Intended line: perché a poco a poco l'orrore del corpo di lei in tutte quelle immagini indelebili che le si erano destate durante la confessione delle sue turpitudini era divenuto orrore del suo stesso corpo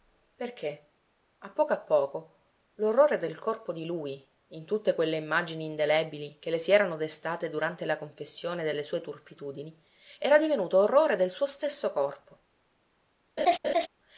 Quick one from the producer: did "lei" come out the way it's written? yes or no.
no